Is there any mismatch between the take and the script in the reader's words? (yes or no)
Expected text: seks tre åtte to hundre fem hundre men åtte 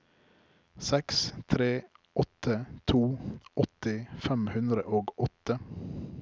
yes